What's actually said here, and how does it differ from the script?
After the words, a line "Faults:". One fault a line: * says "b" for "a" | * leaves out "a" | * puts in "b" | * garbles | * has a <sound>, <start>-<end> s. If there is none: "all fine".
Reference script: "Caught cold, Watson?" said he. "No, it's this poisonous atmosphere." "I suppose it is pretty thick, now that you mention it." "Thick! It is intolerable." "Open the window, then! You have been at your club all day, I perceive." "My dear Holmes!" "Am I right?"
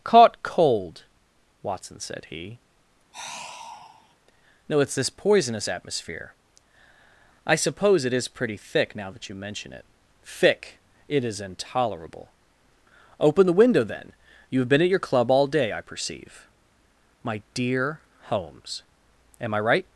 "Caught cold, Watson?" said he. "No, it's this poisonous atmosphere." "I suppose it is pretty thick, now that you mention it." "Thick! It is intolerable." "Open the window, then! You have been at your club all day, I perceive." "My dear Holmes!" "Am I right?"
Faults:
* has a sigh, 3.1-4.2 s